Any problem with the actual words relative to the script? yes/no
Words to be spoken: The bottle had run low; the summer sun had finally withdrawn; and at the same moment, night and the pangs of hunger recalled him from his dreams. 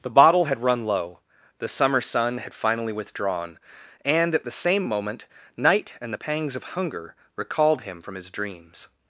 no